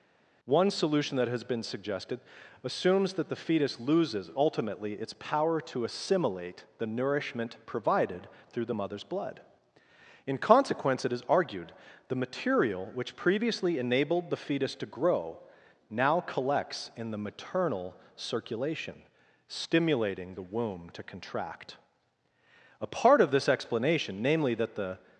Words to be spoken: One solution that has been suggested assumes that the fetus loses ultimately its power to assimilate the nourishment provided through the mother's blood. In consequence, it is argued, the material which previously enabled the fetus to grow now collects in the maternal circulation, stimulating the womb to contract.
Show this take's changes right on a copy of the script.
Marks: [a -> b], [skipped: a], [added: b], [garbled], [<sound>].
One solution that has been suggested assumes that the fetus loses ultimately its power to assimilate the nourishment provided through the mother's blood. In consequence, it is argued, the material which previously enabled the fetus to grow now collects in the maternal circulation, stimulating the womb to contract. [added: A part of this explanation namely that the]